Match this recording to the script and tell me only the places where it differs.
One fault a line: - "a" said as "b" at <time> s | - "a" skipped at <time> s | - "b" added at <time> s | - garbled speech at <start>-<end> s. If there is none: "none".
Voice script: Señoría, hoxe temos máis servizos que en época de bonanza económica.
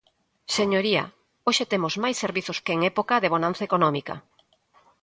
none